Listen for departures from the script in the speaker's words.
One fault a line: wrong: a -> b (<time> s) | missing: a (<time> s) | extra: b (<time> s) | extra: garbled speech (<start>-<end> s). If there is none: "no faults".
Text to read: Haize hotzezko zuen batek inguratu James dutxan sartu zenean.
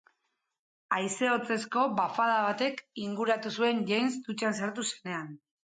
wrong: zuen -> bafada (2.0 s)
extra: zuen (3.6 s)